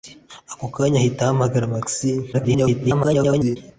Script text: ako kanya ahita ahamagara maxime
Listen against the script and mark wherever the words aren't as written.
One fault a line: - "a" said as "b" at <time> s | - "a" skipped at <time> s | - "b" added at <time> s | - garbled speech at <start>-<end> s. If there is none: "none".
- garbled speech at 2.3-3.6 s